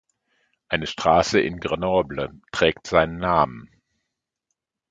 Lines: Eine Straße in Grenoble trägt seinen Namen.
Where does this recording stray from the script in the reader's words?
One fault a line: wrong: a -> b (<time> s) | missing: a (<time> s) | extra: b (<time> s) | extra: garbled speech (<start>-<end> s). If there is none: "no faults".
no faults